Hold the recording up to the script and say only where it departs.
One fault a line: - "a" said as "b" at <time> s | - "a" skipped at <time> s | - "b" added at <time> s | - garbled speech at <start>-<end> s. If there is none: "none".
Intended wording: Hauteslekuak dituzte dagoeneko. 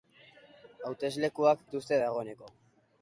none